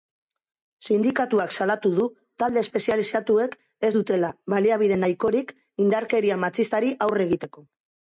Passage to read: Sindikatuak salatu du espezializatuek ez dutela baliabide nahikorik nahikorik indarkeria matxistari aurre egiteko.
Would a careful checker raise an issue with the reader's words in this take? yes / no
yes